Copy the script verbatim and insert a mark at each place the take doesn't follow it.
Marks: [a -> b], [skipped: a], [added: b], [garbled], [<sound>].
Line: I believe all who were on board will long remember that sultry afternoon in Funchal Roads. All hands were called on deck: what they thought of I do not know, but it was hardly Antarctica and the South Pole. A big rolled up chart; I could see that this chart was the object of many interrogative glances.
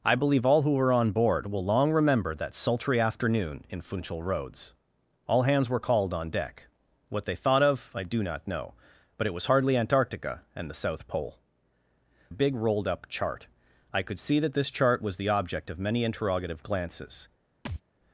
I believe all who were on board will long remember that sultry afternoon in Funchal Roads. All hands were called on deck: what they thought of I do not know, but it was hardly Antarctica and the South Pole. A big rolled up chart; I could see that this chart was the object of many interrogative glances. [thud]